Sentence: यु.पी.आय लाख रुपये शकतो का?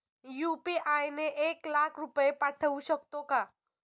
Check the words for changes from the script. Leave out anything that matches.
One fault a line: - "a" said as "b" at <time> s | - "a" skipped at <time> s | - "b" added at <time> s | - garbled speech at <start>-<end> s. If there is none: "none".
- "ने एक" added at 1.1 s
- "पाठवू" added at 2.4 s